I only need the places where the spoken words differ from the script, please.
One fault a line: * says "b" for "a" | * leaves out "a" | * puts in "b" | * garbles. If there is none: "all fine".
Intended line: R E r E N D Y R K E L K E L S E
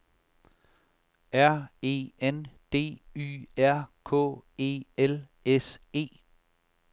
* leaves out "r E"
* leaves out "K E L"